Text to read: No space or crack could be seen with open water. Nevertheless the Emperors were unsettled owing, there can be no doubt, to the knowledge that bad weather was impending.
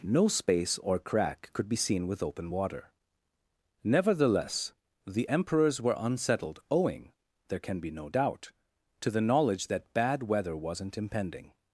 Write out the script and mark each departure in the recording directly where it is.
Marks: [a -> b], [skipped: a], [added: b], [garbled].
No space or crack could be seen with open water. Nevertheless the Emperors were unsettled owing, there can be no doubt, to the knowledge that bad weather [was -> wasn't] impending.